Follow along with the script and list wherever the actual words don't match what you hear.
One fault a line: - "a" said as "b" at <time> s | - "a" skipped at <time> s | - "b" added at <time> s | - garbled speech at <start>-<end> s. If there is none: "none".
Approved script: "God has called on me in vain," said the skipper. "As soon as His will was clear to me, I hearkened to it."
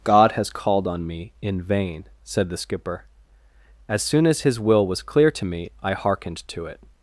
none